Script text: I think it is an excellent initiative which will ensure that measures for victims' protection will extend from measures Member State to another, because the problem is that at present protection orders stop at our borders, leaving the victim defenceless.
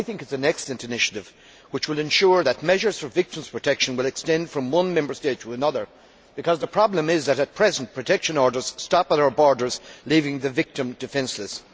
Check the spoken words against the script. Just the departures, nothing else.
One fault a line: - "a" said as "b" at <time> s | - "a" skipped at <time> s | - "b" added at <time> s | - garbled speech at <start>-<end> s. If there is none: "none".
- "measures" said as "one" at 4.7 s